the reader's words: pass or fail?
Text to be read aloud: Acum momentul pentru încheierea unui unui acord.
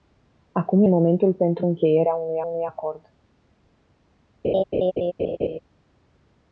pass